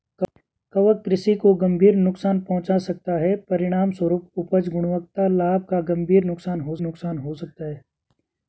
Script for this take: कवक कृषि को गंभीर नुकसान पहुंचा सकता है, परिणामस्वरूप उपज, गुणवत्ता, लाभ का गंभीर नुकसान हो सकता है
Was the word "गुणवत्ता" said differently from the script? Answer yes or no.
no